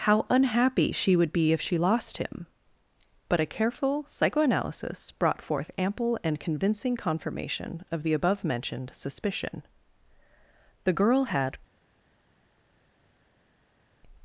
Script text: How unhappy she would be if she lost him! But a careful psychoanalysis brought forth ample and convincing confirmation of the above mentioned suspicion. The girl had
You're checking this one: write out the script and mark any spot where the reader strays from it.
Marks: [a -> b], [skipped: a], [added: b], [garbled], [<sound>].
How unhappy she would be if she lost him! But a careful psychoanalysis brought forth ample and convincing confirmation of the above mentioned suspicion. The girl had